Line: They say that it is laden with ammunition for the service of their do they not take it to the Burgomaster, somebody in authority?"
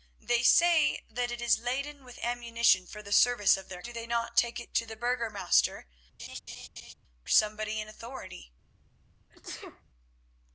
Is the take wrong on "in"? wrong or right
right